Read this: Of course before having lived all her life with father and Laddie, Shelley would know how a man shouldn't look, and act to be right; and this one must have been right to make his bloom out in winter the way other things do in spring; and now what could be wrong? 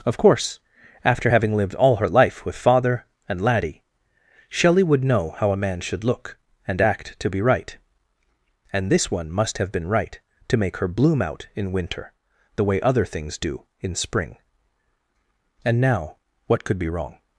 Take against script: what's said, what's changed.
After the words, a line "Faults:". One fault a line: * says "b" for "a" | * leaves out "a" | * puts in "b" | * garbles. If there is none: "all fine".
Of course after having lived all her life with father and Laddie, Shelley would know how a man should look, and act to be right; and this one must have been right to make her bloom out in winter the way other things do in spring; and now what could be wrong?
Faults:
* says "after" for "before"
* says "should" for "shouldn't"
* says "her" for "his"